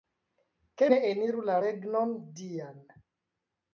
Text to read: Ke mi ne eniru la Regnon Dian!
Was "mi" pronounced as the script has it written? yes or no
no